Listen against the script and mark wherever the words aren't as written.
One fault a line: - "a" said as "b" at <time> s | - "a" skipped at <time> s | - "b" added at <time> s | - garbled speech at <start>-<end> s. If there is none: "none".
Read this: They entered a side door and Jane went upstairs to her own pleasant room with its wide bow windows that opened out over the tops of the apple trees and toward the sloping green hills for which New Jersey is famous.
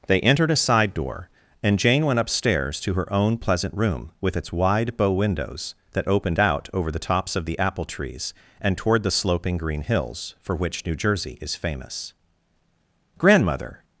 - "Grandmother" added at 13.2 s